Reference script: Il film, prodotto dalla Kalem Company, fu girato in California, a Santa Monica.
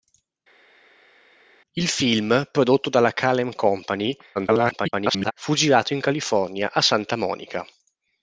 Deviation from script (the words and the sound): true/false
true